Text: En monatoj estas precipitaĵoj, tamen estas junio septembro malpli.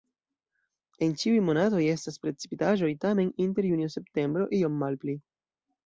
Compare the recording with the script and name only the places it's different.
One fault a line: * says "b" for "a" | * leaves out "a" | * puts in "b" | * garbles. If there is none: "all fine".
* puts in "ĉiuj"
* says "inter" for "estas"
* puts in "iom"